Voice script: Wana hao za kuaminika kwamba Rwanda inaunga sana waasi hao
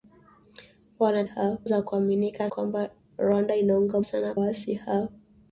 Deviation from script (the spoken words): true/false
false